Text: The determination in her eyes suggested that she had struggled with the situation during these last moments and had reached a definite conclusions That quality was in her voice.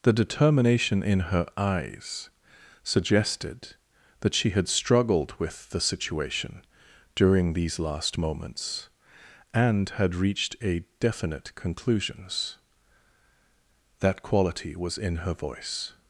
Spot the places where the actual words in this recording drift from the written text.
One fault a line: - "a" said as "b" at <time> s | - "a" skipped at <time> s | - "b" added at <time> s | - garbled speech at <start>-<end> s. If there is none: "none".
none